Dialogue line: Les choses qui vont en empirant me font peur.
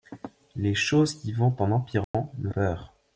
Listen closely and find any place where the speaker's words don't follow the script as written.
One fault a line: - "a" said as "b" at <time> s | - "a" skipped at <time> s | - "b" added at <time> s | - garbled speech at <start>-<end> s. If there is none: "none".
- "font" skipped at 2.5 s